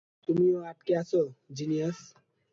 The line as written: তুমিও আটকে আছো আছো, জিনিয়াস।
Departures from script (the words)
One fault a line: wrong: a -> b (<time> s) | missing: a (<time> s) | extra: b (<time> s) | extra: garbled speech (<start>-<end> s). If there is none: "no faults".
missing: আছো (1.2 s)